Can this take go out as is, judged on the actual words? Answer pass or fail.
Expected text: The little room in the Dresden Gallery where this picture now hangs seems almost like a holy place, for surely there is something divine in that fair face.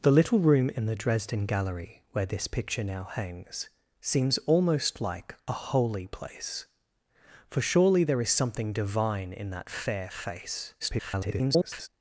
fail